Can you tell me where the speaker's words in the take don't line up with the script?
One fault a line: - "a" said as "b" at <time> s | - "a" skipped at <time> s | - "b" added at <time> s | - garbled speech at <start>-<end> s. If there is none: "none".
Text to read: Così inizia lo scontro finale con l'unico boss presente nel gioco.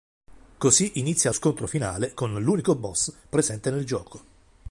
- "lo" skipped at 1.3 s